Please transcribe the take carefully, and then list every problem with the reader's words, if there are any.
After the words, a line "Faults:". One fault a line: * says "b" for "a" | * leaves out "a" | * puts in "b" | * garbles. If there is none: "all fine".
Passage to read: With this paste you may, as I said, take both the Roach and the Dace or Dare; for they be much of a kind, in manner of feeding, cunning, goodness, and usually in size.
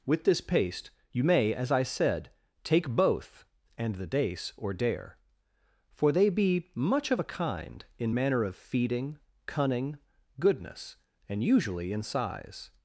With this paste you may, as I said, take both and the Dace or Dare; for they be much of a kind, in manner of feeding, cunning, goodness, and usually in size.
Faults:
* leaves out "the Roach"